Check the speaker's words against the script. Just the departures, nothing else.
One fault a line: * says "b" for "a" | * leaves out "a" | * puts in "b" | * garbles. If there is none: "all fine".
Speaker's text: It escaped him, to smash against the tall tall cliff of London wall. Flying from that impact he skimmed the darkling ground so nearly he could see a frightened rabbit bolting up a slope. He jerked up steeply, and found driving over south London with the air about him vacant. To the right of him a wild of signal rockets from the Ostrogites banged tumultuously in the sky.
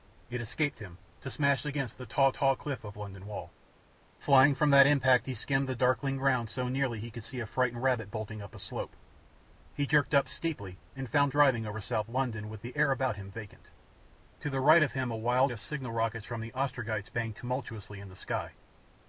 all fine